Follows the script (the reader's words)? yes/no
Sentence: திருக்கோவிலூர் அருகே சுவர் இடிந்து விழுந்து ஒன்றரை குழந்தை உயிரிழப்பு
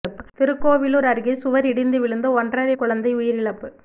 yes